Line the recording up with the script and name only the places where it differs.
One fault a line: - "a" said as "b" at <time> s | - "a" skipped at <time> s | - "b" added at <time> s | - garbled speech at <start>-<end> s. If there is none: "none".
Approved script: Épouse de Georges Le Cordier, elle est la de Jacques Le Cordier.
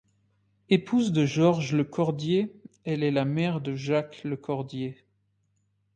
- "mère" added at 3.3 s